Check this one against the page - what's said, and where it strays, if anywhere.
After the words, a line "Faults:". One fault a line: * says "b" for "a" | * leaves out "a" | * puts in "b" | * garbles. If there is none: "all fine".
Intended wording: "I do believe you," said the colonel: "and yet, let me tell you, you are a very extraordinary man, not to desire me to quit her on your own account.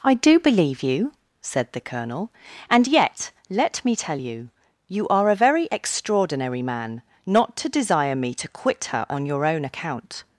"I do believe you," said the colonel: "and yet, let me tell you, you are a very extraordinary man, not to desire me to quit her on your own account.
Faults:
all fine